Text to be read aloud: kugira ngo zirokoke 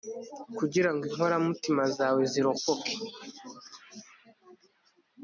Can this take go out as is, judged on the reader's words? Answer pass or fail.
fail